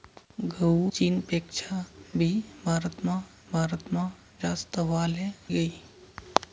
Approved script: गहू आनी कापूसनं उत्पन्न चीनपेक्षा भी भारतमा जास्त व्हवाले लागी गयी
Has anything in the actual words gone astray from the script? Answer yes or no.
yes